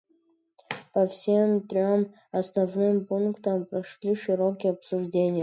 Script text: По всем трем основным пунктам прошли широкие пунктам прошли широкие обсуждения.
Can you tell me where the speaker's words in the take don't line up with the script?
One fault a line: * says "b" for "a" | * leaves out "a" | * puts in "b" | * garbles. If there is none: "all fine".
* leaves out "пунктам прошли широкие"